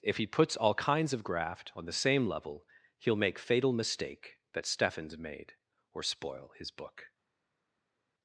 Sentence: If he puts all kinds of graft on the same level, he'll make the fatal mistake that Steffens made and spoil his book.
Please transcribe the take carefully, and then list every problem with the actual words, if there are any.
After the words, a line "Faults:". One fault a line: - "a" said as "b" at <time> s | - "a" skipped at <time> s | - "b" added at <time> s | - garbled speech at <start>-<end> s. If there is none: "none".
If he puts all kinds of graft on the same level, he'll make fatal mistake that Steffens made or spoil his book.
Faults:
- "the" skipped at 3.4 s
- "and" said as "or" at 5.9 s